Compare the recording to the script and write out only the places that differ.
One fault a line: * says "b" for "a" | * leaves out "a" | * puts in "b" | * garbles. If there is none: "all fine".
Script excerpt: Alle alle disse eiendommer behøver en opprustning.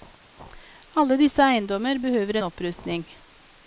* leaves out "alle"